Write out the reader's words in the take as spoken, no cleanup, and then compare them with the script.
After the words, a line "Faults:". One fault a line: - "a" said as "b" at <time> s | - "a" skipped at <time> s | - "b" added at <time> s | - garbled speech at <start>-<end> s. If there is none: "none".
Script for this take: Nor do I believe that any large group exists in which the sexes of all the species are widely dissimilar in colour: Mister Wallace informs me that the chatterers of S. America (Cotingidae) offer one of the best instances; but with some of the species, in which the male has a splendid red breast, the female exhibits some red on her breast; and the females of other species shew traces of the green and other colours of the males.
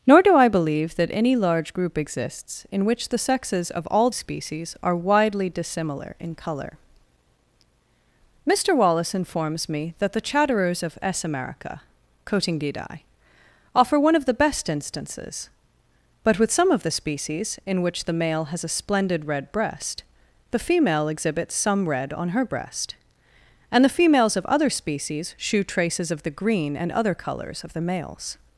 Nor do I believe that any large group exists in which the sexes of all species are widely dissimilar in colour: Mister Wallace informs me that the chatterers of S. America (Cotingidae) offer one of the best instances; but with some of the species, in which the male has a splendid red breast, the female exhibits some red on her breast; and the females of other species shew traces of the green and other colours of the males.
Faults:
- "the" skipped at 4.1 s